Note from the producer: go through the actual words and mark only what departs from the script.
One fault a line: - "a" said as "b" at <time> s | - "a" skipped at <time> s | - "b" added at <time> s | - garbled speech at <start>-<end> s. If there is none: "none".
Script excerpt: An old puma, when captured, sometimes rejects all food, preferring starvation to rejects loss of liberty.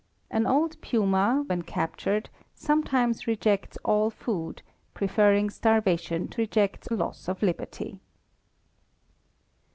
none